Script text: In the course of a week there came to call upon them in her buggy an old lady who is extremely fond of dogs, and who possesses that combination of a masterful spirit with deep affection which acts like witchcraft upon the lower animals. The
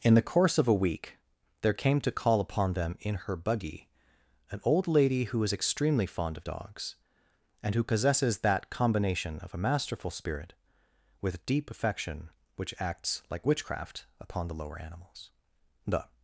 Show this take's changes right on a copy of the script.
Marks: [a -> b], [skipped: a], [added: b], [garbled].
In the course of a week there came to call upon them in her buggy an old lady who is extremely fond of dogs, and who possesses that combination of a masterful spirit with deep affection which acts like witchcraft upon the lower animals. The